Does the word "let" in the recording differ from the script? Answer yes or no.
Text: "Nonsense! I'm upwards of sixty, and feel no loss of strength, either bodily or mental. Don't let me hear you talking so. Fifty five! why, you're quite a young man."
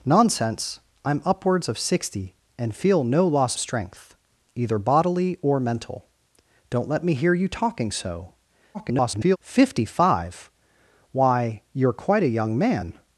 no